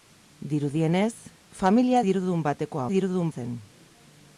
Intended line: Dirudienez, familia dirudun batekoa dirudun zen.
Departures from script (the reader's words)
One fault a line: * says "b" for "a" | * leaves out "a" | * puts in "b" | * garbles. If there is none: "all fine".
all fine